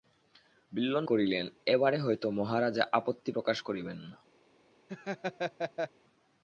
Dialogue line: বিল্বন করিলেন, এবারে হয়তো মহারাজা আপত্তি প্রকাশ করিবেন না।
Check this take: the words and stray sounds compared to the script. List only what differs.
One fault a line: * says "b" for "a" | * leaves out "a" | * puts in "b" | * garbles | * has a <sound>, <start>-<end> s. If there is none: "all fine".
* has a laugh, 4.9-5.9 s